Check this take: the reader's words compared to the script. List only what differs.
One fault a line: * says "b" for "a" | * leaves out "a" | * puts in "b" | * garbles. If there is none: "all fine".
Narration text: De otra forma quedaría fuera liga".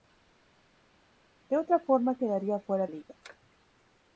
all fine